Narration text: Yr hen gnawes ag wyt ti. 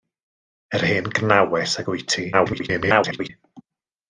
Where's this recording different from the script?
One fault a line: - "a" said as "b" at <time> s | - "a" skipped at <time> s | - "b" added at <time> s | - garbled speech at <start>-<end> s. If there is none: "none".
- garbled speech at 2.3-3.3 s